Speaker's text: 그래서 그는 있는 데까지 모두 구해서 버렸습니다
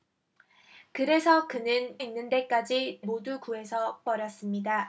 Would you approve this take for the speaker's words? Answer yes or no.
yes